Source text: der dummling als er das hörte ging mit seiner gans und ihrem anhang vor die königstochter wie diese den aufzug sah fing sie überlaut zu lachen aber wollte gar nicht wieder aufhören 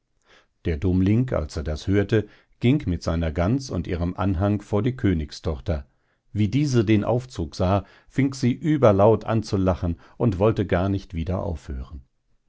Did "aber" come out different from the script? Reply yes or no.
yes